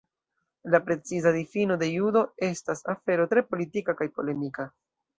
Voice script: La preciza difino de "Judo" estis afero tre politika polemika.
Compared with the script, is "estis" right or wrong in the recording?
wrong